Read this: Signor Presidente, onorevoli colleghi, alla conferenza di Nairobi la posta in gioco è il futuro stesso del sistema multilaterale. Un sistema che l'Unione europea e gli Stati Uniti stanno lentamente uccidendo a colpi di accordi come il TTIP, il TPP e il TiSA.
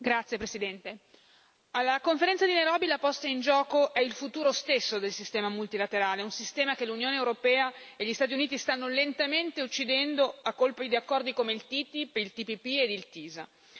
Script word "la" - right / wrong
right